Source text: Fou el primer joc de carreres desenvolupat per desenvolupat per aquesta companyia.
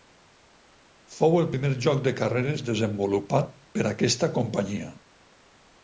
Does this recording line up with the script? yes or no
no